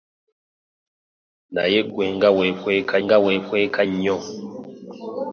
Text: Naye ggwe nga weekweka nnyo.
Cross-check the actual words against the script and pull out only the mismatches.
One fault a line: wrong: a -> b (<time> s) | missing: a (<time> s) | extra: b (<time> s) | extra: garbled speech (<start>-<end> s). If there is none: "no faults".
extra: nga weekweka (3.0 s)